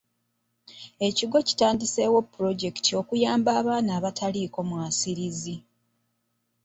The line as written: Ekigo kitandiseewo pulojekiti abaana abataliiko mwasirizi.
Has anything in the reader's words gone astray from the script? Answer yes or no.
yes